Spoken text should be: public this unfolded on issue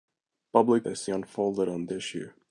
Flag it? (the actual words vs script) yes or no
no